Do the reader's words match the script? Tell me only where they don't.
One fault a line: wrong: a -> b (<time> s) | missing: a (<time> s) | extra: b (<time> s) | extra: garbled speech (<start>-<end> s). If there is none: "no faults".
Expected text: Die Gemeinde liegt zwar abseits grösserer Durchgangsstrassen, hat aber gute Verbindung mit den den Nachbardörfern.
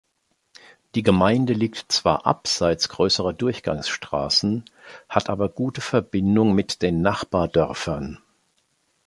missing: den (7.0 s)